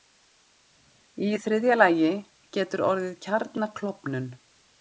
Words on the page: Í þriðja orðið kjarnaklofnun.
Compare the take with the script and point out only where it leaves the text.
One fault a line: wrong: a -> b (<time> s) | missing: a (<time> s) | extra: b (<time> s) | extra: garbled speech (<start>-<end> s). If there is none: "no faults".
extra: lagi getur (1.8 s)